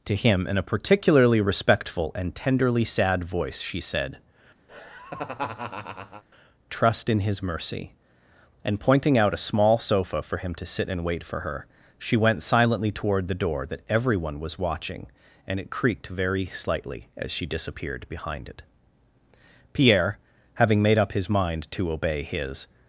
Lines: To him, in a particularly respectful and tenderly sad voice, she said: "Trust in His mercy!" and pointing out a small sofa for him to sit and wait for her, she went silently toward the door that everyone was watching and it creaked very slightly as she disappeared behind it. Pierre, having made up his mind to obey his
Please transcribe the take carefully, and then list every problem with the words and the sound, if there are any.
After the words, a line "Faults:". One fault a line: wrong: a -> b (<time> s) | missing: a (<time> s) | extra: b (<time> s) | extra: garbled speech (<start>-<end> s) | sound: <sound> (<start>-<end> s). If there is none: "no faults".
To him, in a particularly respectful and tenderly sad voice, she said: "Trust in His mercy!" and pointing out a small sofa for him to sit and wait for her, she went silently toward the door that everyone was watching and it creaked very slightly as she disappeared behind it. Pierre, having made up his mind to obey his
Faults:
sound: laugh (4.7-6.2 s)